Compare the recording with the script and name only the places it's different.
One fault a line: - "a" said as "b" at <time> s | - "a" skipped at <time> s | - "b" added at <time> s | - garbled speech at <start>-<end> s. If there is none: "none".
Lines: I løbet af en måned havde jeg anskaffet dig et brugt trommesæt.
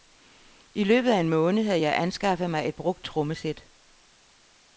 - "dig" said as "mig" at 2.5 s